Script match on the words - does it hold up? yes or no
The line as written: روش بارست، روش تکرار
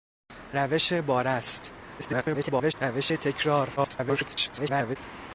no